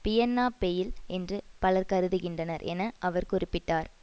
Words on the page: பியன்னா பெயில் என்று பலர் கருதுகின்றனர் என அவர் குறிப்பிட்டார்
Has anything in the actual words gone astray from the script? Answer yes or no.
no